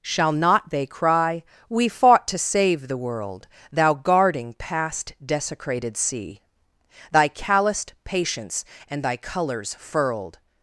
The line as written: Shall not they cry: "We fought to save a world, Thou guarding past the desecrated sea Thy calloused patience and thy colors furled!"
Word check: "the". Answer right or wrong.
wrong